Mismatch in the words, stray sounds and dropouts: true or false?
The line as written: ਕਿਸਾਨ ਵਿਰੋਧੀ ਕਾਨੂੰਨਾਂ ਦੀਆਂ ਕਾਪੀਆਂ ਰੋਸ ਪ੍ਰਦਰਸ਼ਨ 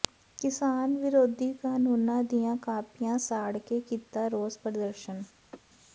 true